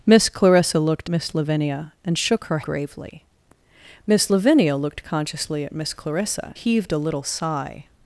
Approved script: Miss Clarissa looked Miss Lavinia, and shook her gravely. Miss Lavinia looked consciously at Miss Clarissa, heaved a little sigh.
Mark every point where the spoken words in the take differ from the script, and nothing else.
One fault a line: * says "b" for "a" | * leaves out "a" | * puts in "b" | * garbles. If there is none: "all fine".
all fine